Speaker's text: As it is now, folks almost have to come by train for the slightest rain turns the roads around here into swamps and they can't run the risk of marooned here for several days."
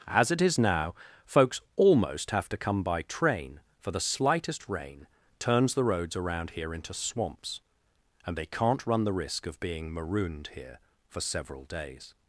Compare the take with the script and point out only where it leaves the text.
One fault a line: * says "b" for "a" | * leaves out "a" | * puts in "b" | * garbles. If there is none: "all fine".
* puts in "being"